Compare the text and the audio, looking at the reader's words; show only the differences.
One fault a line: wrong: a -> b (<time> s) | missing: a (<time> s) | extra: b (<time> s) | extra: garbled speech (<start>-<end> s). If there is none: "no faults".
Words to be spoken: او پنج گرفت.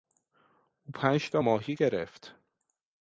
extra: تا ماهی (1.3 s)